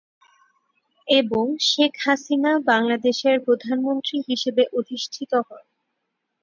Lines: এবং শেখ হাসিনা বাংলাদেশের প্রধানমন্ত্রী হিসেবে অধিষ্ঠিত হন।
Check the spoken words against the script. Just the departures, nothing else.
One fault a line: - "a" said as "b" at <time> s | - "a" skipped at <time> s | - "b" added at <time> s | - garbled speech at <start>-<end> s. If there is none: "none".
none